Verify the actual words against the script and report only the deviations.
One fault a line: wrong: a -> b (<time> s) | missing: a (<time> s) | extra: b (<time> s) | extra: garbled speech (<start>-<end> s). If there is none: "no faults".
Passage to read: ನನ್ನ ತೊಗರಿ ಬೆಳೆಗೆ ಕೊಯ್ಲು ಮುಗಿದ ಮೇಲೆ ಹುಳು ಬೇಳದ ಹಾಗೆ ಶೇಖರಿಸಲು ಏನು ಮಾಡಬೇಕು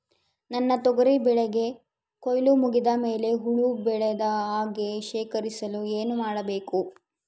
no faults